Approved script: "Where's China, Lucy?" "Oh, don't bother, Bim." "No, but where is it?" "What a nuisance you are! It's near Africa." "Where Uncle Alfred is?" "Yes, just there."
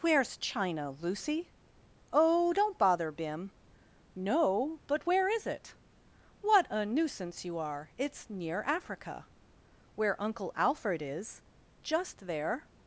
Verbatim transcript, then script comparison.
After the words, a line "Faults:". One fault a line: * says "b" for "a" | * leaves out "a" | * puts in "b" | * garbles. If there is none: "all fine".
"Where's China, Lucy?" "Oh, don't bother, Bim." "No, but where is it?" "What a nuisance you are! It's near Africa." "Where Uncle Alfred is?" "Just there."
Faults:
* leaves out "Yes"